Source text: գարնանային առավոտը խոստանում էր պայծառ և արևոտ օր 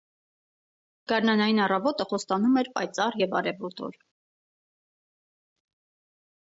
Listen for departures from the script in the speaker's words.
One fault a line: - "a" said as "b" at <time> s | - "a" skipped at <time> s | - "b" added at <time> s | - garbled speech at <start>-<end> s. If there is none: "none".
none